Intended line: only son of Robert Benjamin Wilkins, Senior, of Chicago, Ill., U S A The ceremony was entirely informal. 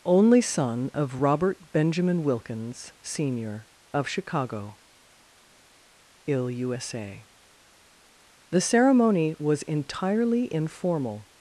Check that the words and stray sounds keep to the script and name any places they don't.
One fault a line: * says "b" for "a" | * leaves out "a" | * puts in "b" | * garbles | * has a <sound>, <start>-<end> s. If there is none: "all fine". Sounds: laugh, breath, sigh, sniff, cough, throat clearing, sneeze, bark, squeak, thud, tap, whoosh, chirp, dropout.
all fine